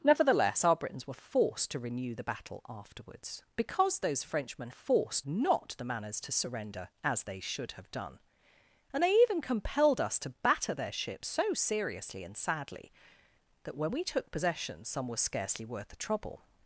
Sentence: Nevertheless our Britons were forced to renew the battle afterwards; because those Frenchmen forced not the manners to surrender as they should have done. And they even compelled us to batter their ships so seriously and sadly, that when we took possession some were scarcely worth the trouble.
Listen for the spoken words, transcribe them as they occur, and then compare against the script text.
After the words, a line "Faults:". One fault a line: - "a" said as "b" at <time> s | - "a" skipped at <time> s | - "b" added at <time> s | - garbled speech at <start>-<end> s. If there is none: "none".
Nevertheless our Britons were forced to renew the battle afterwards; because those Frenchmen forced not the manners to surrender as they should have done. And they even compelled us to batter their ships so seriously and sadly, that when we took possession some were scarcely worth the trouble.
Faults:
none